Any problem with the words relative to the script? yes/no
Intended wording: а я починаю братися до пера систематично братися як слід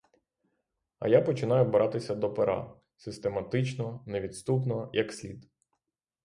yes